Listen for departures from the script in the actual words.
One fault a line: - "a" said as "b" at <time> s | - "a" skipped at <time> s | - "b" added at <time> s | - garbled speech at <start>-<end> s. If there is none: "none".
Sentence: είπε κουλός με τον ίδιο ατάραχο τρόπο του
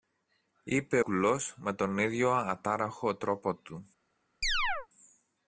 none